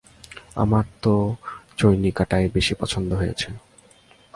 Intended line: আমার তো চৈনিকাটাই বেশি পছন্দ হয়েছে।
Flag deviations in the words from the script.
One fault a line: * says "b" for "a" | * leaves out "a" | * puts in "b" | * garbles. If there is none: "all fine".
all fine